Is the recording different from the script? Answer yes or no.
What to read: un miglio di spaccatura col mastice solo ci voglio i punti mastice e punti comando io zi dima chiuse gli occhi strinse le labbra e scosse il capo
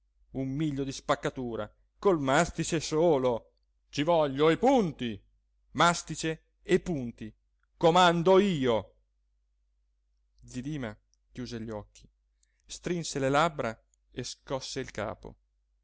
no